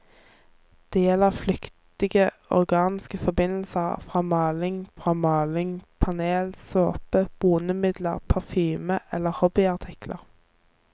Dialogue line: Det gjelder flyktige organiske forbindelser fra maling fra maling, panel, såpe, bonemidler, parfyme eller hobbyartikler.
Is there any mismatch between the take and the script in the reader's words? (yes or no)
no